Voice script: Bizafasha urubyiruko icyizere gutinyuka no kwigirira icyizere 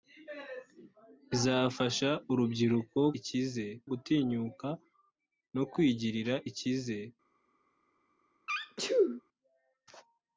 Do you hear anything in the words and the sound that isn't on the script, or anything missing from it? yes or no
yes